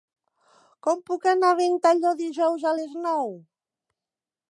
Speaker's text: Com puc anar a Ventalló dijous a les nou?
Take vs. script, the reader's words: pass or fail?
pass